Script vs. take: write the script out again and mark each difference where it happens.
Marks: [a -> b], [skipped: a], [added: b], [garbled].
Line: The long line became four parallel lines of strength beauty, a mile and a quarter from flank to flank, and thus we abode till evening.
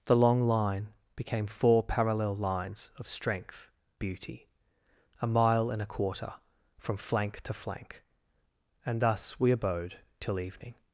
The long line became four parallel lines of strength beauty, a mile and a quarter from flank to flank, and thus we abode till evening.